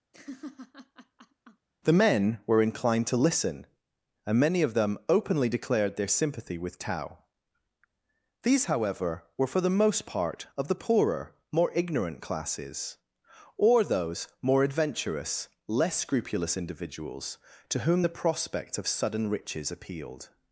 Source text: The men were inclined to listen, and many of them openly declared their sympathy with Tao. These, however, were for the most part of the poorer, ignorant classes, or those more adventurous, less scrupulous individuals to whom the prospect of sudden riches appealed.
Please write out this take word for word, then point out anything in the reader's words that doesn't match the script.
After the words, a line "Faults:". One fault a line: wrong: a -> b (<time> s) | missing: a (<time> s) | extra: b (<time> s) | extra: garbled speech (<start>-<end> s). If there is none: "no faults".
The men were inclined to listen, and many of them openly declared their sympathy with Tao. These, however, were for the most part of the poorer, more ignorant classes, or those more adventurous, less scrupulous individuals to whom the prospect of sudden riches appealed.
Faults:
extra: more (11.5 s)